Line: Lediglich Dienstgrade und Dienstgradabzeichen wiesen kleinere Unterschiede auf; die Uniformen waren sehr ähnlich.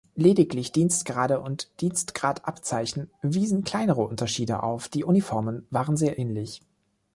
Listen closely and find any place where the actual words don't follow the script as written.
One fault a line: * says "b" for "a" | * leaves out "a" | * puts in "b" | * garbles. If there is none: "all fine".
all fine